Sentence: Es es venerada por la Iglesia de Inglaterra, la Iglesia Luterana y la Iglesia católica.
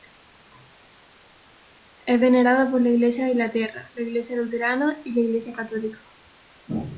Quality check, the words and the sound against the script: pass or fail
fail